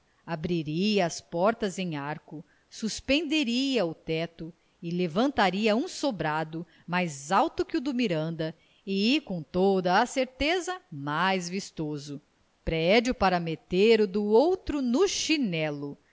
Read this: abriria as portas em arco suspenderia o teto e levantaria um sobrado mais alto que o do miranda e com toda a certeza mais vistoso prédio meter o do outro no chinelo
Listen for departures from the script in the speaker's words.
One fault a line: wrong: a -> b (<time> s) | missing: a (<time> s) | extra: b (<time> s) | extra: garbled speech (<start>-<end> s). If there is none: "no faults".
extra: para (13.1 s)